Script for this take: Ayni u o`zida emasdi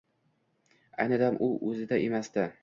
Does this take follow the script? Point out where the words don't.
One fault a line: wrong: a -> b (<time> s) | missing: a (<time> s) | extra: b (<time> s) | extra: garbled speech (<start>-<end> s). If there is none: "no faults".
extra: dam (1.2 s)